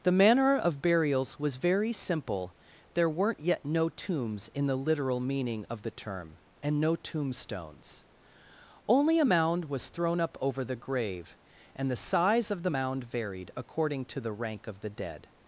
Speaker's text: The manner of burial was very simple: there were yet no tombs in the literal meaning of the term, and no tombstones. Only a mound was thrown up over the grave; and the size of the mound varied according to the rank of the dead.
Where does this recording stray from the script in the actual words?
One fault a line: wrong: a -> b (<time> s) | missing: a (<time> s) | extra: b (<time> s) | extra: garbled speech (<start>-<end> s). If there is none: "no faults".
wrong: burial -> burials (0.8 s)
wrong: were -> weren't (3.1 s)